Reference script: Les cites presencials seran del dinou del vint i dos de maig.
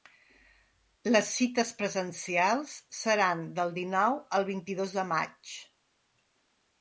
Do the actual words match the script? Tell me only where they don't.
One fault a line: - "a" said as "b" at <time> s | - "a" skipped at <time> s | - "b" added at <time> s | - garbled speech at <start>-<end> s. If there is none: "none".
- "del" said as "al" at 4.4 s